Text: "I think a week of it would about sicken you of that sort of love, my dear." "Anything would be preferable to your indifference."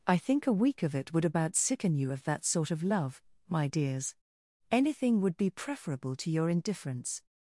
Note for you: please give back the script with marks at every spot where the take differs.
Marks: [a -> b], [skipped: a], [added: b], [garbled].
"I think a week of it would about sicken you of that sort of love, my [dear." -> dears] "Anything would be preferable to your indifference."